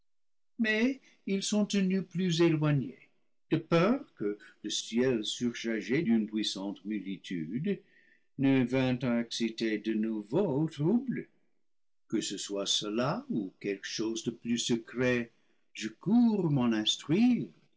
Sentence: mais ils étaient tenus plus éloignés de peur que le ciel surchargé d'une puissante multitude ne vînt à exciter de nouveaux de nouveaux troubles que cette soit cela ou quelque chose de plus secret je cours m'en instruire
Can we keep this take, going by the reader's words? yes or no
no